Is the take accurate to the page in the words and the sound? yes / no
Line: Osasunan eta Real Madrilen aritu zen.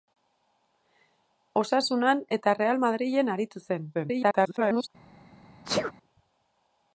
no